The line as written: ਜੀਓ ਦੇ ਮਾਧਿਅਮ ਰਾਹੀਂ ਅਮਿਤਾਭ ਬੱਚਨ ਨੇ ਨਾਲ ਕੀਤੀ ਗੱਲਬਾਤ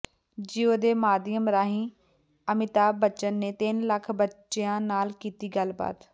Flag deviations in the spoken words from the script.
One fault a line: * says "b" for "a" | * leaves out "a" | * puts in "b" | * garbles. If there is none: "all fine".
* puts in "ਤਿੰਨ ਲੱਖ ਬੱਚਿਆਂ"